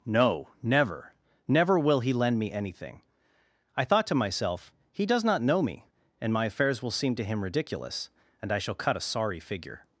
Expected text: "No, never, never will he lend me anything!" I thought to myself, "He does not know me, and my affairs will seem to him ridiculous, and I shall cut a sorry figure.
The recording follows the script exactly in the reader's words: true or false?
true